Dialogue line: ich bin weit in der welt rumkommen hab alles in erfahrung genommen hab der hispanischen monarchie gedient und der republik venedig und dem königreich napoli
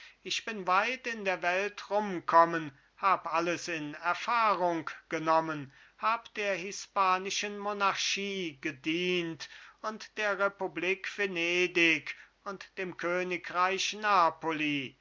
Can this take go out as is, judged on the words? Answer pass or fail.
pass